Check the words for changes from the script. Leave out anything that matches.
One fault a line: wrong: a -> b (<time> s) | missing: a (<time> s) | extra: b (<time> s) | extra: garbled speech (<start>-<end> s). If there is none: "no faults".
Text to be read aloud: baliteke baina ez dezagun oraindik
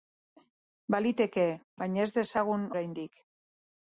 no faults